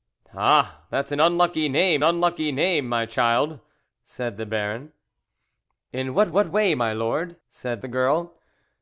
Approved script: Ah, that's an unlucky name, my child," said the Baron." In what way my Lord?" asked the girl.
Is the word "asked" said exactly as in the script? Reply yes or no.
no